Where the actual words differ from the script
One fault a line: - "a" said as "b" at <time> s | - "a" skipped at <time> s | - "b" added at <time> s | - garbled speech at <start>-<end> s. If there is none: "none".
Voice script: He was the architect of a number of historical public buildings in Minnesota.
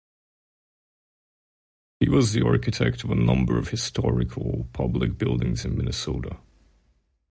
none